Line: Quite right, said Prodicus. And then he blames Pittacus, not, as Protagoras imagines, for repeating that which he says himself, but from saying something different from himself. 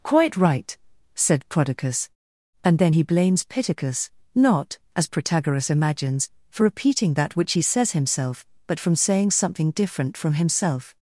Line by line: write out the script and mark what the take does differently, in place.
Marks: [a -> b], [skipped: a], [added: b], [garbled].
Quite right, said Prodicus. And then he blames Pittacus, not, as Protagoras imagines, for repeating that which he says himself, but from saying something different from himself.